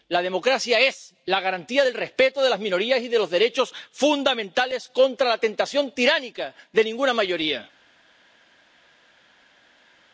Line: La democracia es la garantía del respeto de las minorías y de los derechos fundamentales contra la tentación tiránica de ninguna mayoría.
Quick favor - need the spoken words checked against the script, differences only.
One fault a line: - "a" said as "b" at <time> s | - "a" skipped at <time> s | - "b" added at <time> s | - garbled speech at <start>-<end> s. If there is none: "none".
none